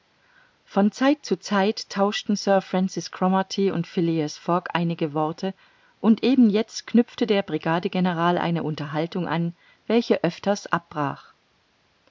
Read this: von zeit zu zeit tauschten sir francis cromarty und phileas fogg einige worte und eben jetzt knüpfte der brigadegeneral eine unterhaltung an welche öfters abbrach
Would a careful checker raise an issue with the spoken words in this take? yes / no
no